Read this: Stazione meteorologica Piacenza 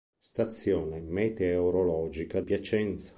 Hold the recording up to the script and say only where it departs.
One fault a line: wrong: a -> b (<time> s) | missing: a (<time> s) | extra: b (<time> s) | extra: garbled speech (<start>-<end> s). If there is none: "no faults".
no faults